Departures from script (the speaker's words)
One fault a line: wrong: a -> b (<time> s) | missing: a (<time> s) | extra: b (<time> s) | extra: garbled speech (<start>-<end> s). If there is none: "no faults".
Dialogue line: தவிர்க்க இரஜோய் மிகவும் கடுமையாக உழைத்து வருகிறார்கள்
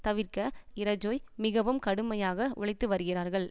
no faults